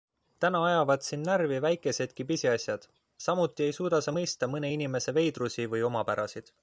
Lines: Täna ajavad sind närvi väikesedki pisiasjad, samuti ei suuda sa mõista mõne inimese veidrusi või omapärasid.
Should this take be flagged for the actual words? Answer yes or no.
no